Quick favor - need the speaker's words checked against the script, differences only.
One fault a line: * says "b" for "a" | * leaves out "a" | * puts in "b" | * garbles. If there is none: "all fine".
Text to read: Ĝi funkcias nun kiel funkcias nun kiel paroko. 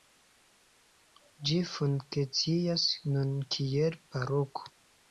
* leaves out "funkcias nun kiel"